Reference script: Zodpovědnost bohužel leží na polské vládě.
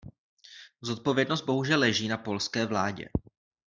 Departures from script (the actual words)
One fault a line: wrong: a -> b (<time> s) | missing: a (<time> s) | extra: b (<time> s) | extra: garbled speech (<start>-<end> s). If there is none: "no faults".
no faults